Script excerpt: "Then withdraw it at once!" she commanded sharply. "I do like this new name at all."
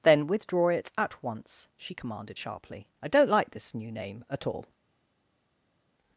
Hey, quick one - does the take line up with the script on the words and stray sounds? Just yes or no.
no